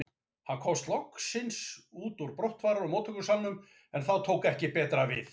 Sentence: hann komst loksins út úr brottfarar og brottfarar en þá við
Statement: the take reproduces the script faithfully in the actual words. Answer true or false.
false